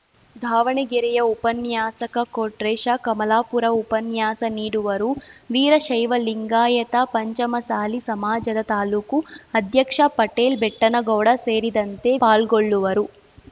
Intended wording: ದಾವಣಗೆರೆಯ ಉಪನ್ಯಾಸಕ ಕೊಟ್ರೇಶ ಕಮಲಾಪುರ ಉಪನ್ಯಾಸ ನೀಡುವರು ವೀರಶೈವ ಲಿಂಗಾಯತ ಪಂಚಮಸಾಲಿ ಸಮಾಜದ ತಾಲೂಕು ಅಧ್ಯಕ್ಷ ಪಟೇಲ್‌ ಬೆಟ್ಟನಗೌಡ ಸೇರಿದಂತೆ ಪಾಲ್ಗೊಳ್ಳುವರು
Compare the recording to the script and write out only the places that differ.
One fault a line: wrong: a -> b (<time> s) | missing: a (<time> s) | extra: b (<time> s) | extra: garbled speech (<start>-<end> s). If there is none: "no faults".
no faults